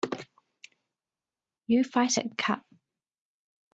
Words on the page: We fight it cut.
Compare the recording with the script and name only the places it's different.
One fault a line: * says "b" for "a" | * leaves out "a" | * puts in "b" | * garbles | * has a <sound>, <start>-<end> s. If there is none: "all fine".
* says "You" for "We"